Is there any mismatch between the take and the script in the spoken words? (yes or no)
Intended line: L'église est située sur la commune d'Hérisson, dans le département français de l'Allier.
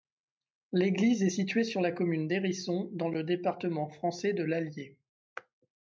no